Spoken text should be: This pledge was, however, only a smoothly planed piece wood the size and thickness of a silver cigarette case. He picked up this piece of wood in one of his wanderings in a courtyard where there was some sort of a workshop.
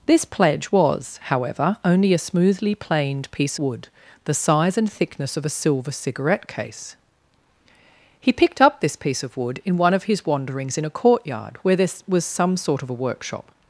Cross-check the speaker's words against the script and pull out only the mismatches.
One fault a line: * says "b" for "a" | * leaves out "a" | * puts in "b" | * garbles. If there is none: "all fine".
all fine